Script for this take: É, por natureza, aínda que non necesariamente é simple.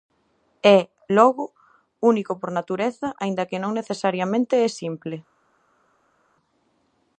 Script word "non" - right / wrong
right